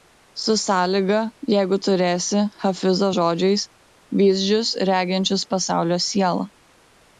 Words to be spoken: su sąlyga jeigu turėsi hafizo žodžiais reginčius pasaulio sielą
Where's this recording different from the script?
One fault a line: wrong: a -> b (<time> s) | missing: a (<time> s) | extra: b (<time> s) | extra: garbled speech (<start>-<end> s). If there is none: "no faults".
extra: vyzdžius (4.2 s)